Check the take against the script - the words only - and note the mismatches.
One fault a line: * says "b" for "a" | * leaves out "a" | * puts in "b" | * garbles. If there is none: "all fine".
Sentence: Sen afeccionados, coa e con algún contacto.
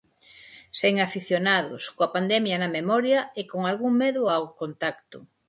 * puts in "pandemia na memoria"
* puts in "medo ao"